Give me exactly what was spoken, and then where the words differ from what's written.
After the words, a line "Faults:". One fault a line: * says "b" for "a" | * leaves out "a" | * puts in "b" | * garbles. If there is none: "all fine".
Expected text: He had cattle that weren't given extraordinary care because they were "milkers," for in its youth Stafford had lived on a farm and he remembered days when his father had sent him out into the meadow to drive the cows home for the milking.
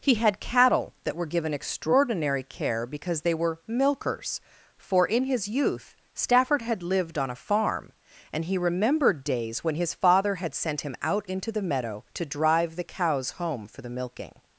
He had cattle that were given extraordinary care because they were "milkers," for in his youth Stafford had lived on a farm and he remembered days when his father had sent him out into the meadow to drive the cows home for the milking.
Faults:
* says "were" for "weren't"
* says "his" for "its"